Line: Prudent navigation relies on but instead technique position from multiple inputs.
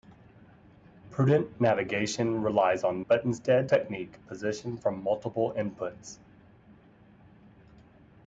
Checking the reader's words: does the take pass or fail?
pass